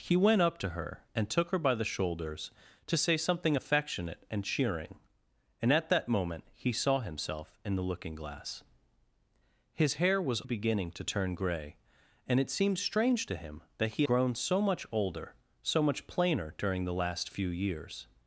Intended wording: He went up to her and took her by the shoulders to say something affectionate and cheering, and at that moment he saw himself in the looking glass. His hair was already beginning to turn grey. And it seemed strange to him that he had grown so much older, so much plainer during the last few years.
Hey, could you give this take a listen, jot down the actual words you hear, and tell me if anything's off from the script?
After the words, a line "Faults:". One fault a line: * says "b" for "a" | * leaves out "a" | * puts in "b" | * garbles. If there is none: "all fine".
He went up to her and took her by the shoulders to say something affectionate and cheering, and at that moment he saw himself in the looking glass. His hair was beginning to turn grey. And it seemed strange to him that he grown so much older, so much plainer during the last few years.
Faults:
* leaves out "already"
* leaves out "had"